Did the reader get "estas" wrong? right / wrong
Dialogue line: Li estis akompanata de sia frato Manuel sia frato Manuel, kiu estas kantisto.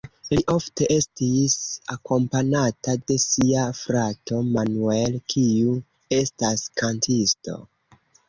right